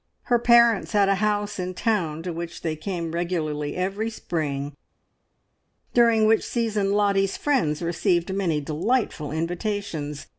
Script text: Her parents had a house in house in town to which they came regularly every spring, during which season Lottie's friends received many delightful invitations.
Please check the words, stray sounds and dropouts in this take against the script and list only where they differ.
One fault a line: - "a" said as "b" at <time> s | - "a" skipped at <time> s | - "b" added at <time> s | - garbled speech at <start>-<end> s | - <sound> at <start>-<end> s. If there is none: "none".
- "house in" skipped at 1.8 s